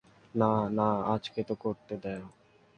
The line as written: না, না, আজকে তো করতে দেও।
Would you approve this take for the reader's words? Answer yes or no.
yes